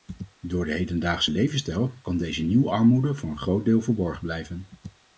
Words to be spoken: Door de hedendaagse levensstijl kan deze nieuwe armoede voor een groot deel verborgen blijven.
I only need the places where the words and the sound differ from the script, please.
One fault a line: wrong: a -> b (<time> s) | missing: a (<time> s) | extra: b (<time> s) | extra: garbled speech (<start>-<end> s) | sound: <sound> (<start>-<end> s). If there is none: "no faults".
no faults